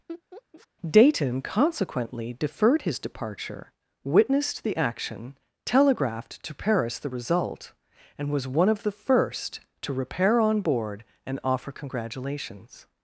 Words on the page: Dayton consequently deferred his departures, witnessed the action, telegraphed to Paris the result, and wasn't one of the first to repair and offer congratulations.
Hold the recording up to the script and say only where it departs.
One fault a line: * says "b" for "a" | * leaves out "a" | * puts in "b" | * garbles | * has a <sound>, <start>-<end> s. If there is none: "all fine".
* has a laugh, 0.1-0.7 s
* says "departure" for "departures"
* says "was" for "wasn't"
* puts in "on board"